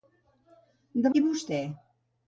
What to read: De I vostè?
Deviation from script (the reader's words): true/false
false